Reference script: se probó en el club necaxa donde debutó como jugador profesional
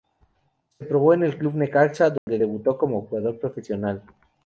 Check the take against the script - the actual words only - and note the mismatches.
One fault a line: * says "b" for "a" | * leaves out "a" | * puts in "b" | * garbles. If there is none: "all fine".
all fine